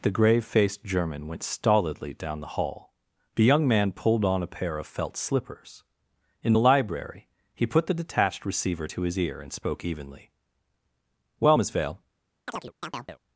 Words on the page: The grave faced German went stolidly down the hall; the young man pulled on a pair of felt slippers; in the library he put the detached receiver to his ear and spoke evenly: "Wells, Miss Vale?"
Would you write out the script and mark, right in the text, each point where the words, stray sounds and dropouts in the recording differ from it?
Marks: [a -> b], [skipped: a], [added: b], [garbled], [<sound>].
The grave faced German went stolidly down the hall; the young man pulled on a pair of felt slippers; in the library he put the detached receiver to his ear and spoke evenly: ["Wells, -> Well] Miss Vale?" [chirp]